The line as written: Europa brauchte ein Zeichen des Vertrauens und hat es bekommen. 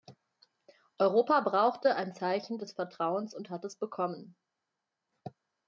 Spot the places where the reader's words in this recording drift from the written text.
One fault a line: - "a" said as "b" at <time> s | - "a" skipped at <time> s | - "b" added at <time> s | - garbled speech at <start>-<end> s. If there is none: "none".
none